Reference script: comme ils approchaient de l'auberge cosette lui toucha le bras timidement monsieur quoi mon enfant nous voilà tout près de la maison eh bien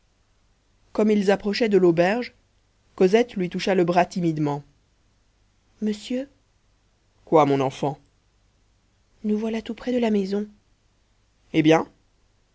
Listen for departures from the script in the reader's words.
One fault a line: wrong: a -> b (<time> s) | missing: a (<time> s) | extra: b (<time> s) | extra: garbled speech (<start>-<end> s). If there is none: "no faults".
no faults